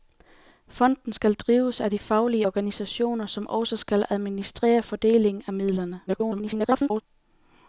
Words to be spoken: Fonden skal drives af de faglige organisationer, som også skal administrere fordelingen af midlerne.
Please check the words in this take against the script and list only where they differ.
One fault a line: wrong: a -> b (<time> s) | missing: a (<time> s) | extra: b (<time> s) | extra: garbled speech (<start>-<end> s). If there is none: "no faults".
extra: garbled speech (6.1-7.0 s)